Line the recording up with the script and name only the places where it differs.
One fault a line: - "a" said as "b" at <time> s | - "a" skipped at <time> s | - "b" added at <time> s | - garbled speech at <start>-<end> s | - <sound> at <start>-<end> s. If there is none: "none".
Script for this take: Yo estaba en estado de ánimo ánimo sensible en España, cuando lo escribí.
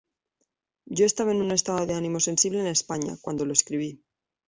- "un" added at 1.4 s
- "ánimo" skipped at 2.2 s